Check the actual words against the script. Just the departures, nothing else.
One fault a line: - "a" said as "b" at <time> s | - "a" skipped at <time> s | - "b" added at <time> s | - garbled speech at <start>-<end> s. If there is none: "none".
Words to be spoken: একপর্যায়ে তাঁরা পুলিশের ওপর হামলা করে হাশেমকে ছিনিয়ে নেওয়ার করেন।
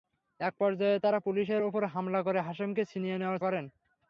none